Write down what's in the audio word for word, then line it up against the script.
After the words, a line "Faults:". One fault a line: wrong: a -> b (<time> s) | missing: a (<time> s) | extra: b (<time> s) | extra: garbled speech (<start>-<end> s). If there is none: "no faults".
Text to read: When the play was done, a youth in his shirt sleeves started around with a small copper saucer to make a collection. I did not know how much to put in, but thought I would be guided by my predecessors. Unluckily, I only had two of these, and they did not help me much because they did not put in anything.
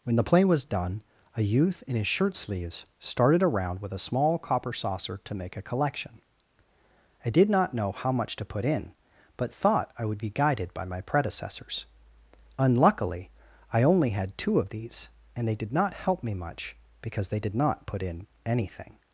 When the play was done, a youth in his shirt sleeves started around with a small copper saucer to make a collection. I did not know how much to put in, but thought I would be guided by my predecessors. Unluckily, I only had two of these, and they did not help me much because they did not put in anything.
Faults:
no faults